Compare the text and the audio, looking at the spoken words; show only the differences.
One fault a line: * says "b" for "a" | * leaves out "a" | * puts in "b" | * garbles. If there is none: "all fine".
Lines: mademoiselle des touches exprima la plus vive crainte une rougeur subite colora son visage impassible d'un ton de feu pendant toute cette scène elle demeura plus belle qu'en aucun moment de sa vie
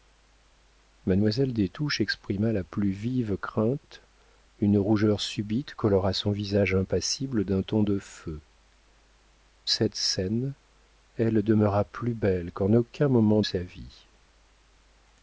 * leaves out "pendant toute"
* leaves out "de"